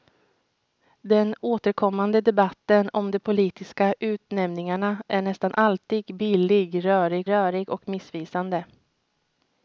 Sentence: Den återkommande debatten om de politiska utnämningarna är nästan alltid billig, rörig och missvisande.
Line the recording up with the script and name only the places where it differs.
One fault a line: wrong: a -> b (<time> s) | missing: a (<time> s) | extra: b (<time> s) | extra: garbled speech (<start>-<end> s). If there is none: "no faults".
extra: rörig (7.3 s)